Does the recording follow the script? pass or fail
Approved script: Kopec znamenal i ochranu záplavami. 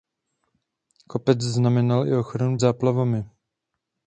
pass